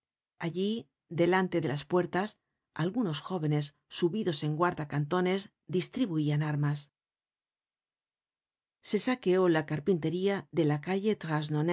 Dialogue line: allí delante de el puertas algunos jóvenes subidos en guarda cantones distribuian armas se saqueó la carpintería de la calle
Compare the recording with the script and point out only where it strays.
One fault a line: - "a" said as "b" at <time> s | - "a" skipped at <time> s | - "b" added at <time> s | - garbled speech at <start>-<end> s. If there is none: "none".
- "el" said as "las" at 1.7 s